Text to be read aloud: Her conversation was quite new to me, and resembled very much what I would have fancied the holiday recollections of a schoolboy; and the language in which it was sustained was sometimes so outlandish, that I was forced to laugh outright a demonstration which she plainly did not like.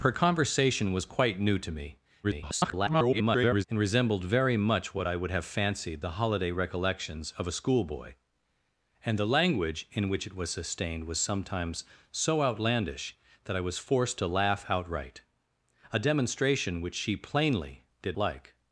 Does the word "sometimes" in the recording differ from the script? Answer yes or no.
no